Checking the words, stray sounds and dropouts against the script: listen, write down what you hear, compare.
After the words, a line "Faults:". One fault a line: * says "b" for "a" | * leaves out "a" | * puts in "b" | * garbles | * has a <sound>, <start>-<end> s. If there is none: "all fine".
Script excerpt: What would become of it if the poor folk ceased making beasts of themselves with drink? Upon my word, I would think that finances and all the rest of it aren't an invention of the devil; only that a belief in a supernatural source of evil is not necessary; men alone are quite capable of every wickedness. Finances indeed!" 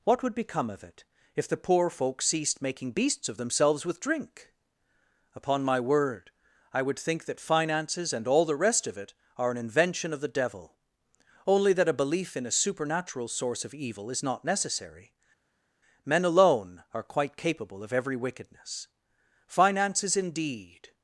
What would become of it if the poor folk ceased making beasts of themselves with drink? Upon my word, I would think that finances and all the rest of it are an invention of the devil; only that a belief in a supernatural source of evil is not necessary; men alone are quite capable of every wickedness. Finances indeed!"
Faults:
* says "are" for "aren't"